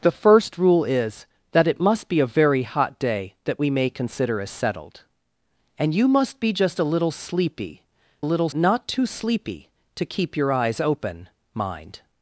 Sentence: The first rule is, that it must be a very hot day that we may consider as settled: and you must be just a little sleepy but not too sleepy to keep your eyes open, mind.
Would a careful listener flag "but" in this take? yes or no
yes